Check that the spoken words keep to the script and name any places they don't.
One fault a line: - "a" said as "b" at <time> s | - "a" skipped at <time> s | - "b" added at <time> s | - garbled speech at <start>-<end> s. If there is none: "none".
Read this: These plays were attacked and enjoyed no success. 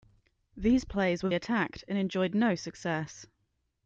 none